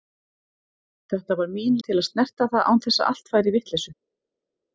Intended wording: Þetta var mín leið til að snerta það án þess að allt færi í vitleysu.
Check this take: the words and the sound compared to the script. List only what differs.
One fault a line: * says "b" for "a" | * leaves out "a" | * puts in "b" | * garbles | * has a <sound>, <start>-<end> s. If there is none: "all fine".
* leaves out "leið"